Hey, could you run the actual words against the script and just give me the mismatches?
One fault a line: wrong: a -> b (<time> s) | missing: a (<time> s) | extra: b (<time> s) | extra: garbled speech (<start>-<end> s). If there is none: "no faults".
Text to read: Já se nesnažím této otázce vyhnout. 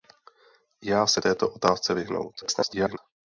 missing: nesnažím (1.2 s)
extra: garbled speech (2.4-3.0 s)